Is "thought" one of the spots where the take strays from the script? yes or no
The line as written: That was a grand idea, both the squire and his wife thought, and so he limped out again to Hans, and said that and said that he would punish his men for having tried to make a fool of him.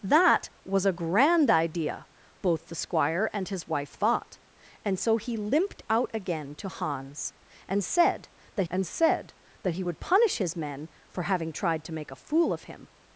no